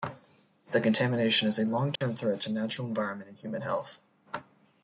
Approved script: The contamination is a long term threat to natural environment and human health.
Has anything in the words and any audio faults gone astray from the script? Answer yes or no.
yes